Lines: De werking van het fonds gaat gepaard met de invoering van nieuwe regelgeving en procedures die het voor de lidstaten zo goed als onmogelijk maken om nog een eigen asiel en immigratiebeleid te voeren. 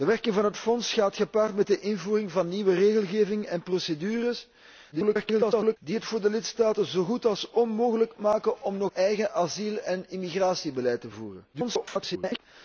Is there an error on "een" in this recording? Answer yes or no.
yes